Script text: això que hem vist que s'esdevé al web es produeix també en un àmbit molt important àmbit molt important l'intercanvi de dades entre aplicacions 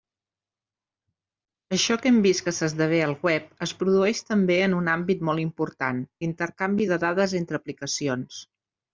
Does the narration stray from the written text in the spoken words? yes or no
yes